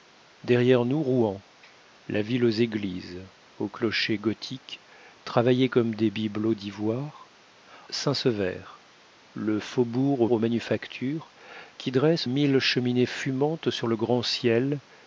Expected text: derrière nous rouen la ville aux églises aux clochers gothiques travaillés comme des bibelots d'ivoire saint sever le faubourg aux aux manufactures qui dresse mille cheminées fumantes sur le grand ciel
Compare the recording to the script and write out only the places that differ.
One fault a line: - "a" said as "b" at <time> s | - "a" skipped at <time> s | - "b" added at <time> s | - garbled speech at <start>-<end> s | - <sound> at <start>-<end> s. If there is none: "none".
none